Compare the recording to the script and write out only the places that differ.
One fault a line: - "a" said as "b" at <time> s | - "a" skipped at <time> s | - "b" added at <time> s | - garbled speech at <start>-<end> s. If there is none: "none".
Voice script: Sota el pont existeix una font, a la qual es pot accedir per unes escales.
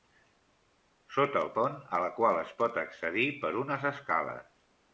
- "pont existeix una" skipped at 1.5 s